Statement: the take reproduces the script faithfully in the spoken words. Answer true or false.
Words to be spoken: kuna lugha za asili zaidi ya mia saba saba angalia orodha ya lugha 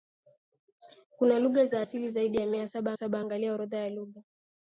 true